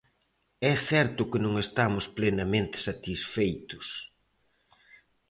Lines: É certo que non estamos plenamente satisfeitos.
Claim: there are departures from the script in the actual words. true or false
false